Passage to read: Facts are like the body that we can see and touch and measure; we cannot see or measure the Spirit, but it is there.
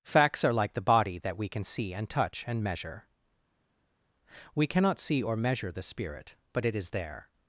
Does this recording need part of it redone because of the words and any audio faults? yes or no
no